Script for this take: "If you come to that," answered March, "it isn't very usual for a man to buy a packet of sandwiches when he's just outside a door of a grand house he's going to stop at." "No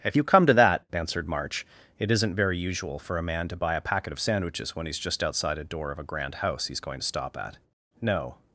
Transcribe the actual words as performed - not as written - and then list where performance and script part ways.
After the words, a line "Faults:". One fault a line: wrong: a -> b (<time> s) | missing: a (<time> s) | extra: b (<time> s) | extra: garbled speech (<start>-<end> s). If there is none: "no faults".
"If you come to that," answered March, "it isn't very usual for a man to buy a packet of sandwiches when he's just outside a door of a grand house he's going to stop at." "No
Faults:
no faults